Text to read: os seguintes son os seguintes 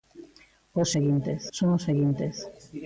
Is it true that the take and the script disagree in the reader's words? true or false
false